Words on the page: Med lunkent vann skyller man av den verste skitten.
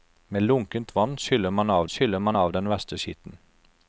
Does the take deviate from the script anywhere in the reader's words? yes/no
yes